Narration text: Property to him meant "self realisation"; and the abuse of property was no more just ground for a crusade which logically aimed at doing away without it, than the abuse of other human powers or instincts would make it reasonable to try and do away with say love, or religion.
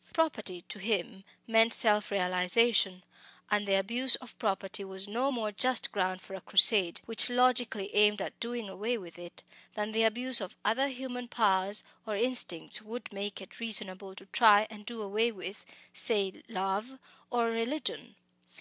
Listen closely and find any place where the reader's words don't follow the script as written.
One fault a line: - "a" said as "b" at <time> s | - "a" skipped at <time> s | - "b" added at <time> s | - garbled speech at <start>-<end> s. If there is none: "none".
- "without" said as "with" at 9.0 s